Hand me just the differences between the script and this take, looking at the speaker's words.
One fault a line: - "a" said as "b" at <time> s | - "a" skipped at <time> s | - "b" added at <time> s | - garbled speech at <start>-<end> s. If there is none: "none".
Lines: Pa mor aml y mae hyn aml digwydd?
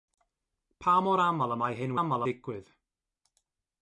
none